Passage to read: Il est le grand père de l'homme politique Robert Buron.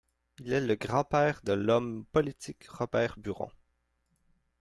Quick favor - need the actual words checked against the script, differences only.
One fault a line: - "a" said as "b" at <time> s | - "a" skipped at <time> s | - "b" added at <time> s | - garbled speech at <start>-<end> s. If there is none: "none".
none